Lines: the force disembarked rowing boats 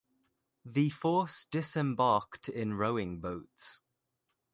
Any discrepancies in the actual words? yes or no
yes